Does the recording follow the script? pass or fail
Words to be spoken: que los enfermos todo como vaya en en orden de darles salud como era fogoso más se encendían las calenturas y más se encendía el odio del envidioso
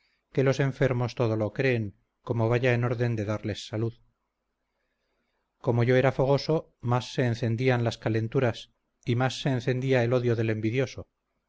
fail